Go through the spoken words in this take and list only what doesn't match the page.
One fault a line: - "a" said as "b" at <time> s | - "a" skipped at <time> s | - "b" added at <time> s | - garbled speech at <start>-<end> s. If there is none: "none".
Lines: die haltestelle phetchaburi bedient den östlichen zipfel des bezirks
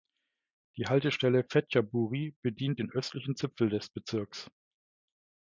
none